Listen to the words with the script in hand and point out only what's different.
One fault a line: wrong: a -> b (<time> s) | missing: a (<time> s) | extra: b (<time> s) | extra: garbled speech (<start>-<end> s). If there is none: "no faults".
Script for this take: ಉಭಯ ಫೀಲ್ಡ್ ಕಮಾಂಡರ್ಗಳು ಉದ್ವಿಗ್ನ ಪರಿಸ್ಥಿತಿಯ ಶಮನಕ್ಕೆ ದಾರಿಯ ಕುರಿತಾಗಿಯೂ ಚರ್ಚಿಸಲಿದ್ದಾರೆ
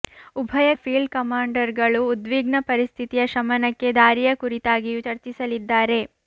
no faults